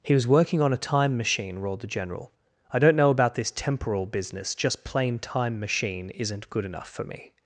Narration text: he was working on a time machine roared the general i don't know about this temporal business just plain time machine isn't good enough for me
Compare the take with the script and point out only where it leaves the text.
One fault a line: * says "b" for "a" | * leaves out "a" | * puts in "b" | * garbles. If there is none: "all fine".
all fine